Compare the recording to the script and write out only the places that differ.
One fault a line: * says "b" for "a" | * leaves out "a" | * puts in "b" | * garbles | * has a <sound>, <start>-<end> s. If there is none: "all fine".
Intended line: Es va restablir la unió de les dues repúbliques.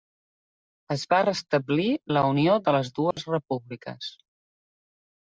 * has a dropout, 3.1-3.2 s